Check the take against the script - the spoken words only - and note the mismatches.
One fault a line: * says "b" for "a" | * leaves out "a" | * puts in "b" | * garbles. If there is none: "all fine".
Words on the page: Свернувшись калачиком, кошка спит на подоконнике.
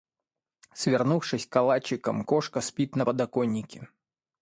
all fine